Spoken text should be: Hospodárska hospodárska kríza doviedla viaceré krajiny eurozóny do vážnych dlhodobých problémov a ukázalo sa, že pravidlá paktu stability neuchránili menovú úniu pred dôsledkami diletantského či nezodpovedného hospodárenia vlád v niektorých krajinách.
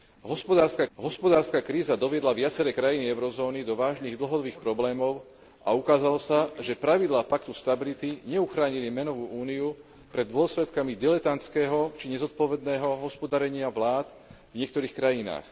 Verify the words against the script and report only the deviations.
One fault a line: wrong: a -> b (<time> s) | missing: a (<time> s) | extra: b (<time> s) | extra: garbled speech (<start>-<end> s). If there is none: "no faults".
no faults